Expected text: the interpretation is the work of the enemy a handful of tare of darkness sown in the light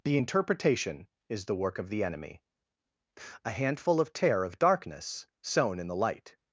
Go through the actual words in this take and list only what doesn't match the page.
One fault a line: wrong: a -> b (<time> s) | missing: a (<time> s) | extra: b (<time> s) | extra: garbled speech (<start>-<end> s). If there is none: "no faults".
no faults